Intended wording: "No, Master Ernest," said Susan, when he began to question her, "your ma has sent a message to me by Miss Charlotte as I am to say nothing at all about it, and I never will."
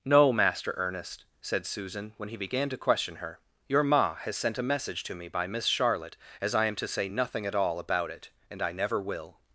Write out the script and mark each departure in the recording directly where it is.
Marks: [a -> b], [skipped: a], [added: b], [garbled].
"No, Master Ernest," said Susan, when he began to question her, "your ma has sent a message to me by Miss Charlotte as I am to say nothing at all about it, and I never will."